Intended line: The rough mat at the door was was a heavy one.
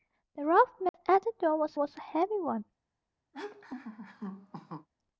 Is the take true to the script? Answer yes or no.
yes